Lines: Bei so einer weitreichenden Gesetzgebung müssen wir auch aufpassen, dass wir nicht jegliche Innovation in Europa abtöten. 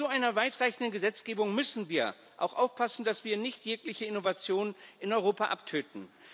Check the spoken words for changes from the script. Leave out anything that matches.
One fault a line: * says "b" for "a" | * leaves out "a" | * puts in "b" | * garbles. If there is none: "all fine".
all fine